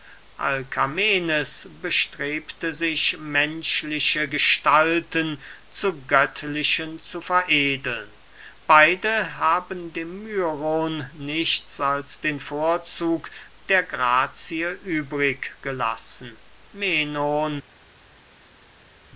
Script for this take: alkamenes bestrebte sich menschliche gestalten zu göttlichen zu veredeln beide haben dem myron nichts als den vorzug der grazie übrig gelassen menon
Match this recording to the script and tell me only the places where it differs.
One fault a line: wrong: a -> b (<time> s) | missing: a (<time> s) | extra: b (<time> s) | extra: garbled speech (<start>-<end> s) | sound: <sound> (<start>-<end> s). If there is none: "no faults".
no faults